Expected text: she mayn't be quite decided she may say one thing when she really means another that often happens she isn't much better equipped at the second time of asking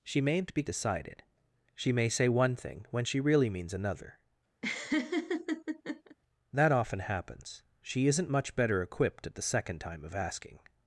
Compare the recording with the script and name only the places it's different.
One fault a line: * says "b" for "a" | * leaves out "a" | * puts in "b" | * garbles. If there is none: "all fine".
* leaves out "quite"